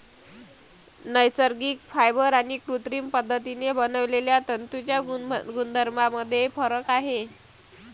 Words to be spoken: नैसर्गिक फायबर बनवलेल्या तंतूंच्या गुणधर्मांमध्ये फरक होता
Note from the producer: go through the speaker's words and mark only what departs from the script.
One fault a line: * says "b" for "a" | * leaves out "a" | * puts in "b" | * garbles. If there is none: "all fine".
* puts in "आणि कृत्रिम पद्धतीने"
* says "आहे" for "होता"